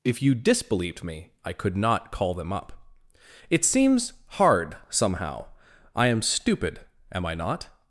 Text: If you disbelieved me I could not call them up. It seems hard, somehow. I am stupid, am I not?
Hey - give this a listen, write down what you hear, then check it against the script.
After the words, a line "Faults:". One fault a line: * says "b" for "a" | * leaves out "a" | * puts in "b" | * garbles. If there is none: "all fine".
If you disbelieved me I could not call them up. It seems hard, somehow. I am stupid, am I not?
Faults:
all fine